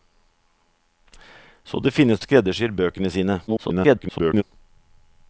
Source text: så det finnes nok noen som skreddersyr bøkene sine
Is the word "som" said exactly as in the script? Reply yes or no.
no